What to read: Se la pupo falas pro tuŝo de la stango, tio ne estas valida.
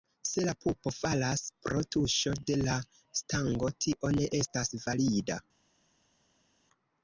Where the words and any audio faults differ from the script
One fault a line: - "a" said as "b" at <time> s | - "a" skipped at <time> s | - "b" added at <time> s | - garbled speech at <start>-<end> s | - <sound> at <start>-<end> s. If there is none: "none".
none